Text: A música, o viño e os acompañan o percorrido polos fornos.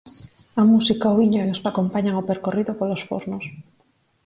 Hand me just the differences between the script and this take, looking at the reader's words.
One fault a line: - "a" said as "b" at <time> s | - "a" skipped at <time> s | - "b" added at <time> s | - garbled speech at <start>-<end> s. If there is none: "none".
none